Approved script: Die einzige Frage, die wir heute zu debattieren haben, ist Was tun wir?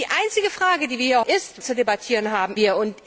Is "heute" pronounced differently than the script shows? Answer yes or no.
yes